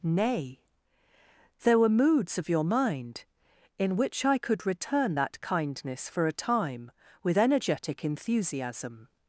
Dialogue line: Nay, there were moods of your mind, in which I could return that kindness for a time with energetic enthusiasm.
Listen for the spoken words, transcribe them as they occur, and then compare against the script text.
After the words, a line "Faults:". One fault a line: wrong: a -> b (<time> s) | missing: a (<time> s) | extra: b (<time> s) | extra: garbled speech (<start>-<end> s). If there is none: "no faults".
Nay, there were moods of your mind, in which I could return that kindness for a time with energetic enthusiasm.
Faults:
no faults